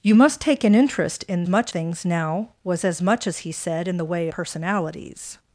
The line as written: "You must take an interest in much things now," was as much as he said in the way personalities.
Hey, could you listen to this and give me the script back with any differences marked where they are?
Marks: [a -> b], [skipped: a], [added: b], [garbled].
"You must take an interest in much things now," was as much as he said in the way personalities.